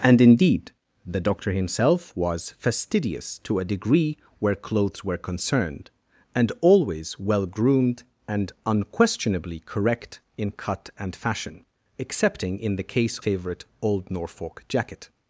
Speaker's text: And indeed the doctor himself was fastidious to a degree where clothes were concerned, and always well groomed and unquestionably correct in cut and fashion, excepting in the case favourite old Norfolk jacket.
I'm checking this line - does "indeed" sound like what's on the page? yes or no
yes